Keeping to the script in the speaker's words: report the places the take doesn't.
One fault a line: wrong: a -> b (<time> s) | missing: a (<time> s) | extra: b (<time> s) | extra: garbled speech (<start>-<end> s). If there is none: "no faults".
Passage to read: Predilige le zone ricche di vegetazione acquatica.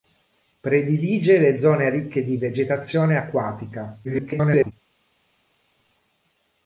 extra: garbled speech (4.0-4.7 s)